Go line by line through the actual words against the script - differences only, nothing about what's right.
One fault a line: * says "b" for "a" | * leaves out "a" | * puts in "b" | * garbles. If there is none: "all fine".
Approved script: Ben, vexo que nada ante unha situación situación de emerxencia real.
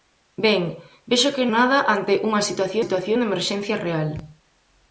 all fine